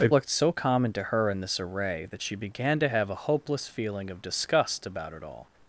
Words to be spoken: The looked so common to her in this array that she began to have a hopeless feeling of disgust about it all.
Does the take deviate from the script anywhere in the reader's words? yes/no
no